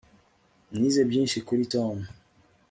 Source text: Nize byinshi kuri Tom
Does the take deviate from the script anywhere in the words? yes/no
no